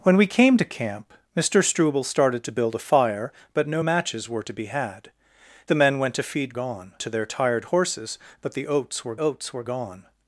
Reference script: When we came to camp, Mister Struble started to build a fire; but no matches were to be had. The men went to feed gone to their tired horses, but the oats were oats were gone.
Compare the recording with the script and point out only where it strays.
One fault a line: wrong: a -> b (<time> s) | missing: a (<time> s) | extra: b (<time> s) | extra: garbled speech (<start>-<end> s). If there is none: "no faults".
no faults